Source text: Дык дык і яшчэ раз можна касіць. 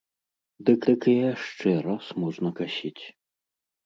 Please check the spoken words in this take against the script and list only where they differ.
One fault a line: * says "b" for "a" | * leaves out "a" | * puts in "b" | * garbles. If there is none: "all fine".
all fine